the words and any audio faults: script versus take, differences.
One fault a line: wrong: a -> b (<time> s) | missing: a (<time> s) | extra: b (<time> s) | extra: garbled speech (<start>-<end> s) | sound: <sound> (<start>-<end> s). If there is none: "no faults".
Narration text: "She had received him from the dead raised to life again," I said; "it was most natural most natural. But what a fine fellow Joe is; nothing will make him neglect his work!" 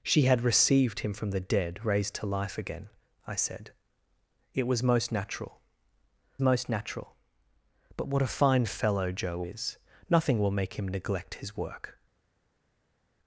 no faults